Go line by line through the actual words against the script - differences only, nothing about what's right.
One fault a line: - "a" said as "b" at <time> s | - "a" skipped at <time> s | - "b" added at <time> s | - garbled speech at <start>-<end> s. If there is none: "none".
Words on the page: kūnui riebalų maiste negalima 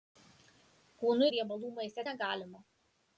none